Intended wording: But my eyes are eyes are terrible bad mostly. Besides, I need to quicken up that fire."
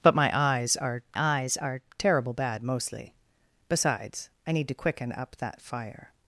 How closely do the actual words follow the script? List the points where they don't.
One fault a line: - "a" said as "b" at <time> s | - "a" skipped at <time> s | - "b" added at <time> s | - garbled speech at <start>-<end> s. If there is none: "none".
none